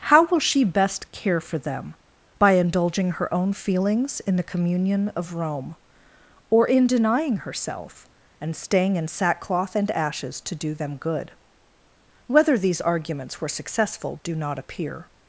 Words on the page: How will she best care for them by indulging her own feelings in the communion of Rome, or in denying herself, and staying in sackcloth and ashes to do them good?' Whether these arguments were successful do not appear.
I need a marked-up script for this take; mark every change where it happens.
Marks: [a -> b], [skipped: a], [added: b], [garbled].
How will she best care for them by indulging her own feelings in the communion of Rome, or in denying herself, and staying in sackcloth and ashes to do them good?' Whether these arguments were successful do not appear.